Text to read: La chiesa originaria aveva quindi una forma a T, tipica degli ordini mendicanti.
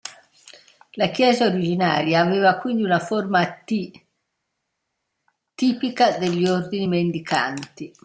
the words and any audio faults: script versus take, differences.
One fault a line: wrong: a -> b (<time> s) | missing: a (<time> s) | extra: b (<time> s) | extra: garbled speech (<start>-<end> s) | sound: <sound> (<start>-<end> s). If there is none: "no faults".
no faults